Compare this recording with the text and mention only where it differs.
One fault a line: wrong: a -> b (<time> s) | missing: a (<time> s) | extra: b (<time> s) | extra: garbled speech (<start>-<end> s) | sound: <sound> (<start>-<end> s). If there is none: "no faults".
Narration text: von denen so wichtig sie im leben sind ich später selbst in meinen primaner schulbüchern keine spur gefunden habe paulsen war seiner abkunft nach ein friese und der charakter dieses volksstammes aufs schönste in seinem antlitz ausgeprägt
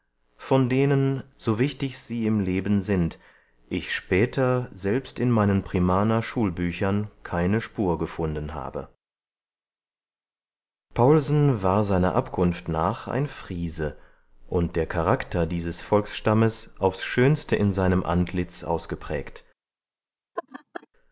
sound: laugh (20.4-20.9 s)